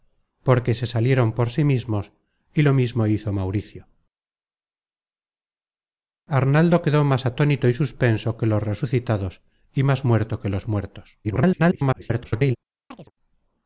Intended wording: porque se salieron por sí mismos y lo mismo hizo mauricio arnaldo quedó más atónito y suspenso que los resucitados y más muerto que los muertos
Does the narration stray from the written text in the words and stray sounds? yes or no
yes